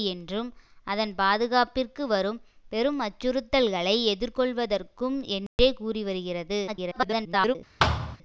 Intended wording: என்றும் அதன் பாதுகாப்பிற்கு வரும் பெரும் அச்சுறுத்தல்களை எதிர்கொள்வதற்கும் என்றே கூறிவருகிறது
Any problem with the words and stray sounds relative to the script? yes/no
yes